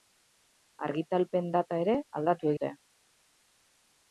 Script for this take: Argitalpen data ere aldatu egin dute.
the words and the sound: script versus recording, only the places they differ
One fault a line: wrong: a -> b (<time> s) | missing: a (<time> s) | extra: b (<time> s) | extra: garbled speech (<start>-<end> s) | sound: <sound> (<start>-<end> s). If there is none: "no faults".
missing: egin (2.5 s)